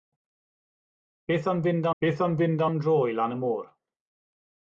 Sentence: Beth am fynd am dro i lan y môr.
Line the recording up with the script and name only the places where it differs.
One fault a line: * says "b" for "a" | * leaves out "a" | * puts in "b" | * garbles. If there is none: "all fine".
* puts in "beth am fynd"